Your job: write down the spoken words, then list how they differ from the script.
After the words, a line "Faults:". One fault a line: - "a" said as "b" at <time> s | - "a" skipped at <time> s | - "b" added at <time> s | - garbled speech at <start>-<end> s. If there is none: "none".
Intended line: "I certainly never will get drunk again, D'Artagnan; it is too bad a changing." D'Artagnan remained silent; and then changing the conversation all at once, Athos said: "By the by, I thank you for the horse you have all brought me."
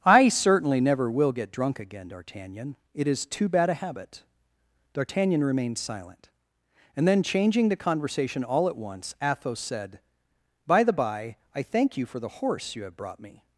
"I certainly never will get drunk again, D'Artagnan; it is too bad a habit." D'Artagnan remained silent; and then changing the conversation all at once, Athos said: "By the by, I thank you for the horse you have brought me."
Faults:
- "changing" said as "habit" at 3.7 s
- "all" skipped at 12.9 s